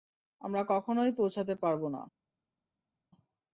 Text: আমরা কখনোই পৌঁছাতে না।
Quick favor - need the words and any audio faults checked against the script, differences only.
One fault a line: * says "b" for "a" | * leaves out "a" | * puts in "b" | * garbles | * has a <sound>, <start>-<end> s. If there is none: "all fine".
* puts in "পারব"